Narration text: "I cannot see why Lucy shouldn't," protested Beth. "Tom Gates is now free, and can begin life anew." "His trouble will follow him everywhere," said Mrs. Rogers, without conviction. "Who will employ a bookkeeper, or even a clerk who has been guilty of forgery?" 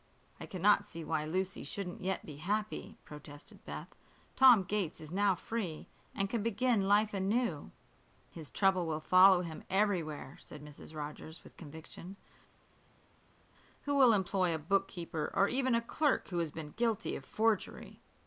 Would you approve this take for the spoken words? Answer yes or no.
no